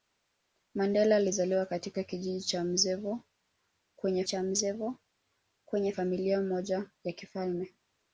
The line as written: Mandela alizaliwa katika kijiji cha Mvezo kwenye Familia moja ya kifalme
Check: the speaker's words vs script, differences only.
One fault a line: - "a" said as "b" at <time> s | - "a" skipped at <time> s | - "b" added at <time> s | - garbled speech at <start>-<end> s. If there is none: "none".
- "cha Mvezo kwenye" added at 4.3 s